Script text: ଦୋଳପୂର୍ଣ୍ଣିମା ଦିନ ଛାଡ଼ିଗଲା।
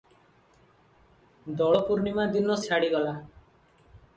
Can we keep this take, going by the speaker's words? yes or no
yes